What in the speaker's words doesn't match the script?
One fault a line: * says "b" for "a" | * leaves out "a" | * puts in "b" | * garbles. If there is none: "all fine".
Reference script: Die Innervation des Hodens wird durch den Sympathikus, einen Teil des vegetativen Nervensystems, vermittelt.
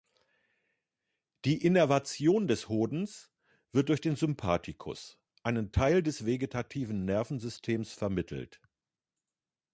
all fine